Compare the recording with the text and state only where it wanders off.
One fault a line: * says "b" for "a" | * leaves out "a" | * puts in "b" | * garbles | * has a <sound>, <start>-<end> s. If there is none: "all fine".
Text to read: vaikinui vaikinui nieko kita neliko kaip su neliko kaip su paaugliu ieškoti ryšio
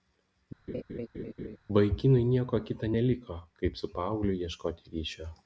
* has a laugh, 0.7-1.6 s
* leaves out "vaikinui"
* leaves out "neliko kaip su"